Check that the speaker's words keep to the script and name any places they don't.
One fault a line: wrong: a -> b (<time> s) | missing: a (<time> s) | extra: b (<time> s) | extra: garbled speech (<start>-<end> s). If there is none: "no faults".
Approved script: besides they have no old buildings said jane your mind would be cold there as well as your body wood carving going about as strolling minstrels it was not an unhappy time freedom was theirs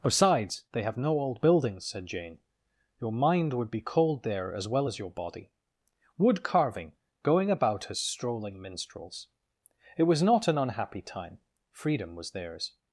no faults